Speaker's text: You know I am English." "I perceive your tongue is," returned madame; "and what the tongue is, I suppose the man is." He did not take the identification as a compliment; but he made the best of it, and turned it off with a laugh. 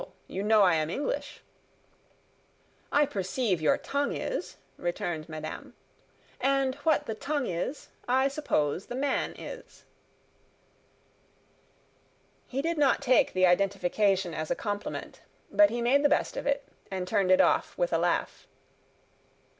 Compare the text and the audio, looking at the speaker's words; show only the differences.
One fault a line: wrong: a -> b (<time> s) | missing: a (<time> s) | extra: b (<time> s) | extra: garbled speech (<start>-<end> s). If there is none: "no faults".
no faults